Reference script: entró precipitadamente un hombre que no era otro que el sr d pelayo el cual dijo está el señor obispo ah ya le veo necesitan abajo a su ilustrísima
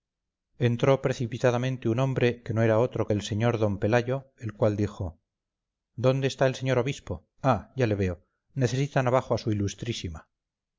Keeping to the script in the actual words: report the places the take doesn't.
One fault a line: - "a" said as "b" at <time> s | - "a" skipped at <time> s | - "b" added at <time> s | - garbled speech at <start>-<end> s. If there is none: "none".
- "dónde" added at 6.0 s